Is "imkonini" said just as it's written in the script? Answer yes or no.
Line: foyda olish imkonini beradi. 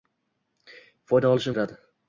no